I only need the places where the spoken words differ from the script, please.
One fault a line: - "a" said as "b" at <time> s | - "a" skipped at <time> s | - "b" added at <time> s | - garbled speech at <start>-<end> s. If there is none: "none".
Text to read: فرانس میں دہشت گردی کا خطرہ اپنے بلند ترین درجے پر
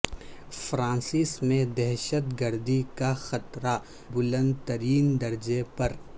- "اپنے" skipped at 3.8 s